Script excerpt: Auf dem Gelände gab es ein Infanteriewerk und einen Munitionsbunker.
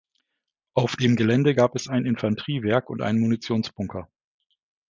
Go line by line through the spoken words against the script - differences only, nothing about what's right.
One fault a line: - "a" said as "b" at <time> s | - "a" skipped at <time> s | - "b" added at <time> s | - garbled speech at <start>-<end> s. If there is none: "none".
none